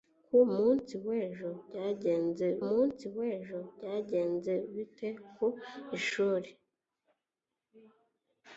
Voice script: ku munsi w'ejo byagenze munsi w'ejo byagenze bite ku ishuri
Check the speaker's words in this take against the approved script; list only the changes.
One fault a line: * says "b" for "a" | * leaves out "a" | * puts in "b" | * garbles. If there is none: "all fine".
all fine